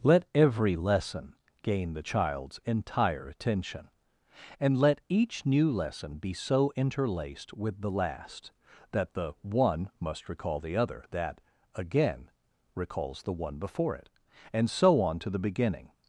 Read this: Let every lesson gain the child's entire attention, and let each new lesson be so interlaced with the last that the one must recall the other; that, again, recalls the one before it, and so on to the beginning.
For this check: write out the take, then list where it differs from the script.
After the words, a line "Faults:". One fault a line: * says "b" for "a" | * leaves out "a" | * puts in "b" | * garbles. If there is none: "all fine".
Let every lesson gain the child's entire attention, and let each new lesson be so interlaced with the last that the one must recall the other; that, again, recalls the one before it, and so on to the beginning.
Faults:
all fine